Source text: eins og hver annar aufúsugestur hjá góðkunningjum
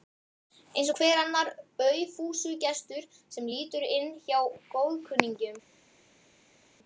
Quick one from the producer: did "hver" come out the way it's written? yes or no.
yes